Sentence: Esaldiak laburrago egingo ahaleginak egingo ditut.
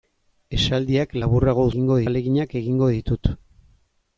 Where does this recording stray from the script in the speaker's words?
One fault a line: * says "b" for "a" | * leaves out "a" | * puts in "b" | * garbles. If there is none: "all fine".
all fine